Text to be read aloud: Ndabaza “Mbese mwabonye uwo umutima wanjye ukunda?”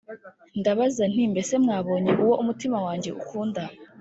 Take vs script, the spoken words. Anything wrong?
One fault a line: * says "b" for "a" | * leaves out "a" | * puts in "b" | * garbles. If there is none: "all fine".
* puts in "nti"